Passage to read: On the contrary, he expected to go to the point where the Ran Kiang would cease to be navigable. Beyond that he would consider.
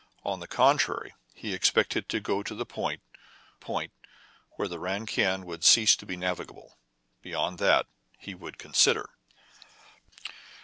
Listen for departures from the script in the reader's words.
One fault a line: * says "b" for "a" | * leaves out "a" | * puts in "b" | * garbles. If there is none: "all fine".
* puts in "point"